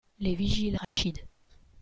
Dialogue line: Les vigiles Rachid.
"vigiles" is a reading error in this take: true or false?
false